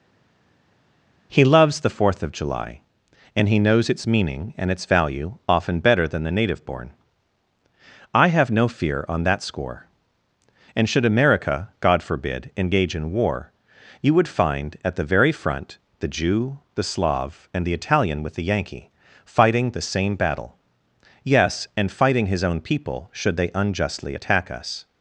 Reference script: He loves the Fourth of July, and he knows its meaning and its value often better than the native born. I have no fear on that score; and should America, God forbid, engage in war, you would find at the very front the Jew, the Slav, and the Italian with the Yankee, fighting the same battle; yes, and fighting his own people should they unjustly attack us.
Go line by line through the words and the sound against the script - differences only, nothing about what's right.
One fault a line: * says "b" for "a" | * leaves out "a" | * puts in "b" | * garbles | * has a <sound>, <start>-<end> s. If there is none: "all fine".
all fine